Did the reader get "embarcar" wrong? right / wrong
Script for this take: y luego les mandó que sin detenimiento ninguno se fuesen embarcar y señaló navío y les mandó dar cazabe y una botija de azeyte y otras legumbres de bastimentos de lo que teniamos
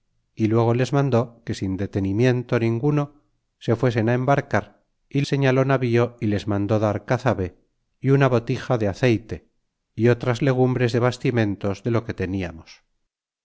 right